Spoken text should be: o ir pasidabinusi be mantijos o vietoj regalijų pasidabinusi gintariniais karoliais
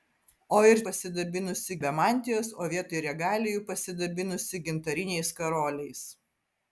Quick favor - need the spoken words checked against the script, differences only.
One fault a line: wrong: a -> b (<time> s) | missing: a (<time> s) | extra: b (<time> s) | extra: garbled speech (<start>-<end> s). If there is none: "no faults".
no faults